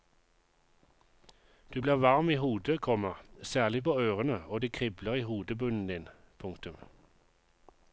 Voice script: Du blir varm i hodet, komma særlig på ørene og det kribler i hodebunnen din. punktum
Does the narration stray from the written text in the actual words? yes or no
no